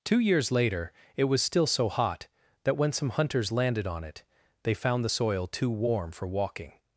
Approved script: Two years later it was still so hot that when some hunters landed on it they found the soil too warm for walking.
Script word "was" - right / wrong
right